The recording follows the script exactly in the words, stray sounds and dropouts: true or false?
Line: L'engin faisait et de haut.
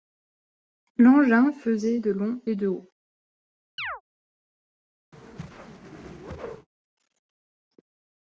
false